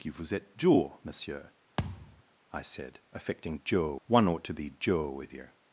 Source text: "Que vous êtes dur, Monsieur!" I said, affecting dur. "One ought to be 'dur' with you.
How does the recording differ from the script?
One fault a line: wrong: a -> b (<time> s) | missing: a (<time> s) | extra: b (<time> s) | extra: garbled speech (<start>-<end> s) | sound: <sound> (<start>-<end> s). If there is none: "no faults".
sound: thud (1.8-2.2 s)